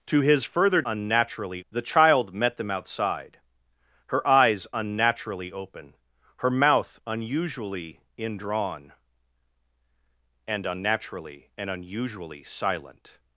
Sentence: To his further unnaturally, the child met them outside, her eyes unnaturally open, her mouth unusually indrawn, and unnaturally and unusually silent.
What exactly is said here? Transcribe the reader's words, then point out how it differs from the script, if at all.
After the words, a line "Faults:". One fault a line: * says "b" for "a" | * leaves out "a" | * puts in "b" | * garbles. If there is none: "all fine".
To his further unnaturally, the child met them outside, her eyes unnaturally open, her mouth unusually indrawn, and unnaturally and unusually silent.
Faults:
all fine